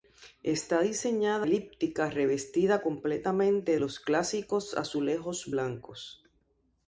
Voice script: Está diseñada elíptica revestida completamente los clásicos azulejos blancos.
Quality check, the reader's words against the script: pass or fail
pass